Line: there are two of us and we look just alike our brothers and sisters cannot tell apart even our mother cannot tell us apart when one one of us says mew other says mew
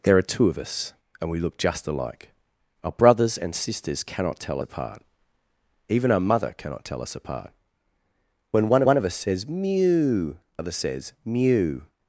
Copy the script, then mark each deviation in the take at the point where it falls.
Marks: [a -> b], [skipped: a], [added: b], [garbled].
there are two of us and we look just alike our brothers and sisters cannot tell apart even our mother cannot tell us apart when one one of us says mew other says mew